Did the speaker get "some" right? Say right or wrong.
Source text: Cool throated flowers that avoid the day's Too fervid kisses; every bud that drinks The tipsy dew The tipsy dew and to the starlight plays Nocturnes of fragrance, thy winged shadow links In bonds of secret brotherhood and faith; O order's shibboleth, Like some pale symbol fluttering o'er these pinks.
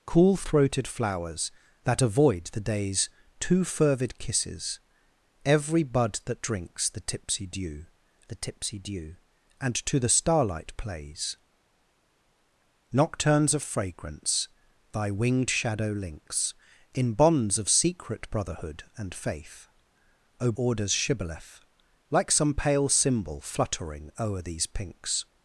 right